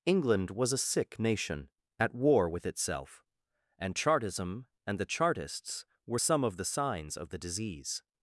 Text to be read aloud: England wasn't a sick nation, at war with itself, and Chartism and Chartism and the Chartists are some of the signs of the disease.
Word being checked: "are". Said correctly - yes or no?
no